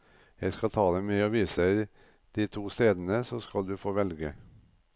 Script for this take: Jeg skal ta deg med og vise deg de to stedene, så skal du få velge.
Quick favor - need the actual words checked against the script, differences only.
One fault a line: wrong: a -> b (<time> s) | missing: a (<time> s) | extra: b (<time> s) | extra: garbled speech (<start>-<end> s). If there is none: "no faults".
no faults